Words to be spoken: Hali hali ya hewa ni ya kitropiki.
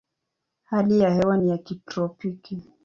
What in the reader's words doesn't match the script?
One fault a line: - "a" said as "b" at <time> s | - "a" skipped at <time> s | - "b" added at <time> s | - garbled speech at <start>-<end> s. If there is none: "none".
- "hali" skipped at 1.0 s